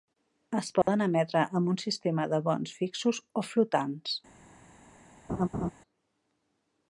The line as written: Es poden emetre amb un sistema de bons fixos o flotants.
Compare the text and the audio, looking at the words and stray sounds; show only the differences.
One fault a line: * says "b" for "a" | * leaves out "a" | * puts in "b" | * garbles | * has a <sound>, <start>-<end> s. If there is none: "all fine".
* has a dropout, 0.8-0.9 s
* has a laugh, 5.3-5.7 s